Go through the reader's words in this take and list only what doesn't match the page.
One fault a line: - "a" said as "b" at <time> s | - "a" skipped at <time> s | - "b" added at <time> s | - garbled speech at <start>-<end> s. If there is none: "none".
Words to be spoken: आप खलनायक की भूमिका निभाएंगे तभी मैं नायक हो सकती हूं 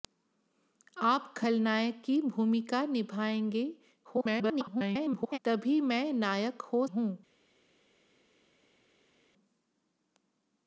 - garbled speech at 4.0-5.4 s
- "सकती" skipped at 6.9 s